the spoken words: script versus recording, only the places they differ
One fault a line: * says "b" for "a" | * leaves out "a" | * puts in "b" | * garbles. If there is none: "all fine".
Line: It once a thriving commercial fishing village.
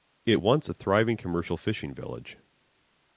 all fine